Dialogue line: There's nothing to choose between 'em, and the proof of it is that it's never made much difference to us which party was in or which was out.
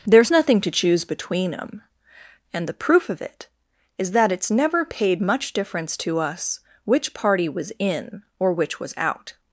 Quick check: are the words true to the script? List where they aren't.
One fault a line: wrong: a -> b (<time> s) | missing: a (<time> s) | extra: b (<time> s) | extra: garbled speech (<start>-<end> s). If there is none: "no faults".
wrong: made -> paid (4.8 s)